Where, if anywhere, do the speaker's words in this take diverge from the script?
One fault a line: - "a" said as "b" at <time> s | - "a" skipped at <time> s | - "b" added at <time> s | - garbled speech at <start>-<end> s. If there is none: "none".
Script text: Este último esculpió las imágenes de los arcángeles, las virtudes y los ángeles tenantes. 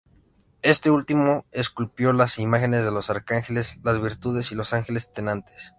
none